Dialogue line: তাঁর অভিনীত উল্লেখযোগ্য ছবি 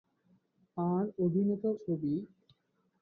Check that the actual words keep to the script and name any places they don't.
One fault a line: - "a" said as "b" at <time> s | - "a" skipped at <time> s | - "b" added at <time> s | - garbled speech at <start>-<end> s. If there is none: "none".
- "উল্লেখযোগ্য" skipped at 1.6 s